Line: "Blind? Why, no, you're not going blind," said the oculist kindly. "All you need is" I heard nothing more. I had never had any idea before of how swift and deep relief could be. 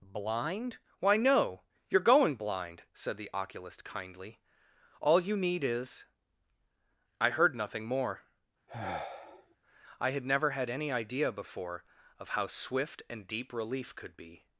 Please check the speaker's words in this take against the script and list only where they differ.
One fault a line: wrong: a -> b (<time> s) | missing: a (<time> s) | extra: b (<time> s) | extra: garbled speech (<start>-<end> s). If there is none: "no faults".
missing: not (2.0 s)